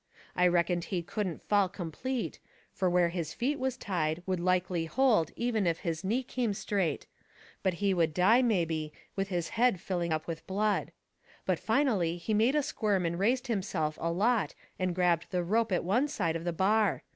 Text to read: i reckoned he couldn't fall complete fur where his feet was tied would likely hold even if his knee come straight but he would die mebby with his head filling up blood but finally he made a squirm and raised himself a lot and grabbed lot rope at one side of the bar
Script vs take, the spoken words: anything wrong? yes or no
yes